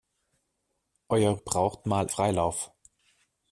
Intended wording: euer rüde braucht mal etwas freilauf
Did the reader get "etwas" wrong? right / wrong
wrong